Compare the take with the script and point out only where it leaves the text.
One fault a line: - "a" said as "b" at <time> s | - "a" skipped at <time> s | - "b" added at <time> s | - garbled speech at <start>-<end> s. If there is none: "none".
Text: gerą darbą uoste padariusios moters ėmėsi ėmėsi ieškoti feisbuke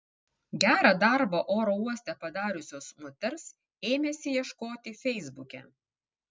- "oro" added at 1.6 s
- "ėmėsi" skipped at 4.3 s